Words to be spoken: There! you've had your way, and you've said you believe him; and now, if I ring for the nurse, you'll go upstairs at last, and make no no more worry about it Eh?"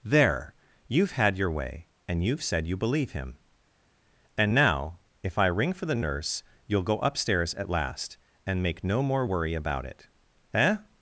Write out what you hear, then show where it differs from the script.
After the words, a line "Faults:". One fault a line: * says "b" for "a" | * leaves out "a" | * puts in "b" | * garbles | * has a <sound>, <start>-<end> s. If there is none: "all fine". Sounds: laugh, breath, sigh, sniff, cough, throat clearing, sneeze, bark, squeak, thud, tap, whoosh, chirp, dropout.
There! you've had your way, and you've said you believe him; and now, if I ring for the nurse, you'll go upstairs at last, and make no more worry about it Eh?"
Faults:
* leaves out "no"